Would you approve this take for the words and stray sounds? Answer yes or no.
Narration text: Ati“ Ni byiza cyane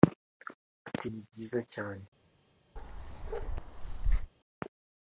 no